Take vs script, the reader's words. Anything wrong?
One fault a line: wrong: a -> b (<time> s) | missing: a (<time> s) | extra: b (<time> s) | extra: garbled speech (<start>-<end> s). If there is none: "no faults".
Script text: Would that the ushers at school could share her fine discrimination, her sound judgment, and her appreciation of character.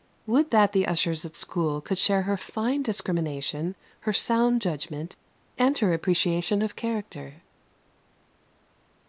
no faults